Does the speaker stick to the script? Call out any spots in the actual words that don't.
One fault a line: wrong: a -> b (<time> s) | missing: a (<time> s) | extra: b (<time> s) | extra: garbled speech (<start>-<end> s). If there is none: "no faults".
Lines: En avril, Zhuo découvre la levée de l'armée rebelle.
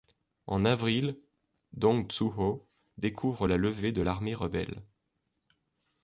extra: Dong (1.7 s)